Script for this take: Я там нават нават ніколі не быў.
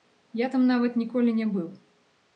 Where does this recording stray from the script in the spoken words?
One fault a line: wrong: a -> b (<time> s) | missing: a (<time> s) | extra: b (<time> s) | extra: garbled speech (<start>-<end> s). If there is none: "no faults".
missing: нават (1.0 s)